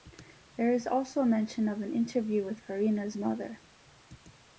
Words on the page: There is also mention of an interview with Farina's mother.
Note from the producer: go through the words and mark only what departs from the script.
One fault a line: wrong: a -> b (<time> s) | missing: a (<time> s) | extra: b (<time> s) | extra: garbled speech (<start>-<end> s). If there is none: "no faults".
no faults